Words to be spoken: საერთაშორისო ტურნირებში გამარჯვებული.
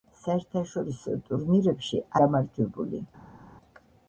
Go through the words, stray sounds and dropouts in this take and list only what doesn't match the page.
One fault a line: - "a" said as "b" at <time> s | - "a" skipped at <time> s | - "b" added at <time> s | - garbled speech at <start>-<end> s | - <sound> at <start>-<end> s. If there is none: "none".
none